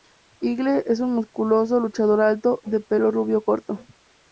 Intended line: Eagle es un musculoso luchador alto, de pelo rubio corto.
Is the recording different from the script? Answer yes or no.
no